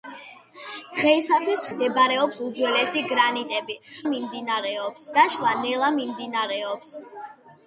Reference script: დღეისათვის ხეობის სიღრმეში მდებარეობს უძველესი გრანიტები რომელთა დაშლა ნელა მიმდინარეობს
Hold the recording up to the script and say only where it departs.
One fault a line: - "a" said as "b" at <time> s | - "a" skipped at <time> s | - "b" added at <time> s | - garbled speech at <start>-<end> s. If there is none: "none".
- "ხეობის სიღრმეში" skipped at 1.6 s
- "რომელთა" said as "მიმდინარეობს" at 4.1 s